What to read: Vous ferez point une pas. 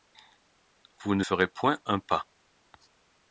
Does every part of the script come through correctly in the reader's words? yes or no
no